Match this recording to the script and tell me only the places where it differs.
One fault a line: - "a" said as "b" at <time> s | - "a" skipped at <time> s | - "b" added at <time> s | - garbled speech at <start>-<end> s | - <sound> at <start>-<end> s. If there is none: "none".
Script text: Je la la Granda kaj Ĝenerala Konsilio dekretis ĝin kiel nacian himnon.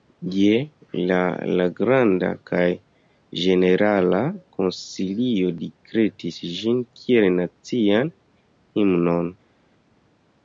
none